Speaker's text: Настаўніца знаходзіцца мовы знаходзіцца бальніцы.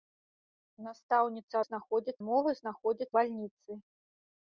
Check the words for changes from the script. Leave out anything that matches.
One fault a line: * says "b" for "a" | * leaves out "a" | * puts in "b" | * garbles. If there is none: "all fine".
all fine